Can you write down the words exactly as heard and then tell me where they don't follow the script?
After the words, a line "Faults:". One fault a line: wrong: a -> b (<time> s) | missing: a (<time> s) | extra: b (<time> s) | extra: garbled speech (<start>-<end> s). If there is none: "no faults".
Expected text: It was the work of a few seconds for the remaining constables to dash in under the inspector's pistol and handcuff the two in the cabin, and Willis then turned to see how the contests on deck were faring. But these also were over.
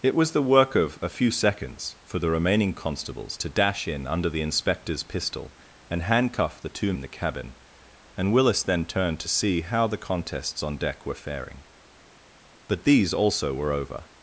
It was the work of a few seconds for the remaining constables to dash in under the inspector's pistol and handcuff the two in the cabin, and Willis then turned to see how the contests on deck were faring. But these also were over.
Faults:
no faults